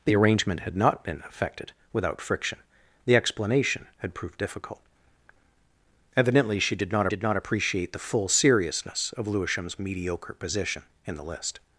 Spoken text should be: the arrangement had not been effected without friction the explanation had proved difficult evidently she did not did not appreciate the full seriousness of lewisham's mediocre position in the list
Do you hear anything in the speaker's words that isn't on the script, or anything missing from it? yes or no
no